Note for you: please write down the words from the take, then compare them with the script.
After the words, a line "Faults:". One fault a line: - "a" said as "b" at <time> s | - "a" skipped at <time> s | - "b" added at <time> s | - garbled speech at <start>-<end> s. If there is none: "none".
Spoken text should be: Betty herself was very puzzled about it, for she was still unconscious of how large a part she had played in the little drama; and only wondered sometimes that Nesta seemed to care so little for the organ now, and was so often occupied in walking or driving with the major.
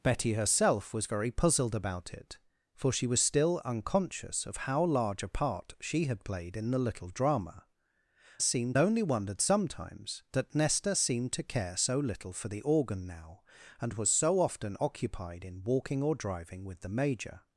Betty herself was very puzzled about it, for she was still unconscious of how large a part she had played in the little drama; seemed only wondered sometimes that Nesta seemed to care so little for the organ now, and was so often occupied in walking or driving with the major.
Faults:
- "and" said as "seemed" at 8.4 s